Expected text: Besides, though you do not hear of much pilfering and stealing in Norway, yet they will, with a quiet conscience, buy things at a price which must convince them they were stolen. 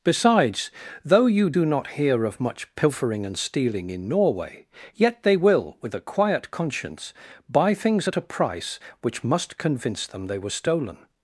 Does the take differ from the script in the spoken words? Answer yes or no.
no